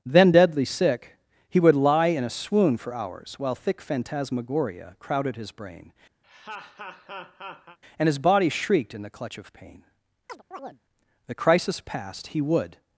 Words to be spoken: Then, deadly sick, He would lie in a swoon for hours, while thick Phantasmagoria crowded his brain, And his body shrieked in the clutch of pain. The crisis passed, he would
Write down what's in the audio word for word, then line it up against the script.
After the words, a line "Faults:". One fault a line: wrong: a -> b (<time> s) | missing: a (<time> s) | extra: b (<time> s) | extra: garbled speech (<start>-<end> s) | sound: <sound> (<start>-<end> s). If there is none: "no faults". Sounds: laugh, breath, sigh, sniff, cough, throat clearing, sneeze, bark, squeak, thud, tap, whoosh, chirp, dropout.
Then, deadly sick, He would lie in a swoon for hours, while thick Phantasmagoria crowded his brain, And his body shrieked in the clutch of pain. The crisis passed, he would
Faults:
sound: laugh (6.2-7.8 s)
sound: chirp (10.3-10.8 s)